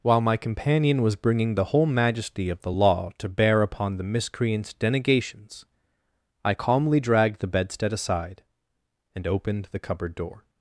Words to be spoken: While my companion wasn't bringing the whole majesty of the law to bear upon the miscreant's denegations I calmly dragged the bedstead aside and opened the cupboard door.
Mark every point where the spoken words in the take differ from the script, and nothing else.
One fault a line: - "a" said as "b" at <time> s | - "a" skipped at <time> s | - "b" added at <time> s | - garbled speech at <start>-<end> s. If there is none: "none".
- "wasn't" said as "was" at 1.0 s